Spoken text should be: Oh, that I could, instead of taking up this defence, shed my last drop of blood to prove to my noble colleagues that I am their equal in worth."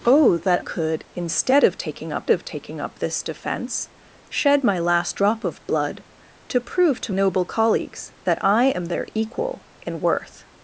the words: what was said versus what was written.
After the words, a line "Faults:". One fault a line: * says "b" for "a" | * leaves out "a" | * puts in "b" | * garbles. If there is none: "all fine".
Oh, that could, instead of taking up of taking up this defence, shed my last drop of blood to prove to noble colleagues that I am their equal in worth."
Faults:
* leaves out "I"
* puts in "of taking up"
* leaves out "my"